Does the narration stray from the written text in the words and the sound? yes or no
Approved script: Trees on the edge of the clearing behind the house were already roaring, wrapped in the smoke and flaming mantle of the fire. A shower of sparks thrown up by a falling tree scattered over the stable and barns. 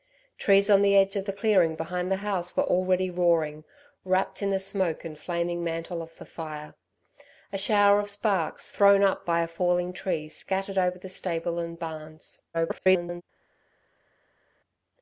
yes